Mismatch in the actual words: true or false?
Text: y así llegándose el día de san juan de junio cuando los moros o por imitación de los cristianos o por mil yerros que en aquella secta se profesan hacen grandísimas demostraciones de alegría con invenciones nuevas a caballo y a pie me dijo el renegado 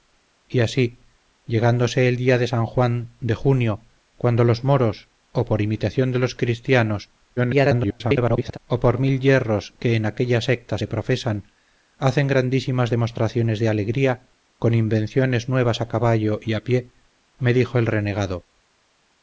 true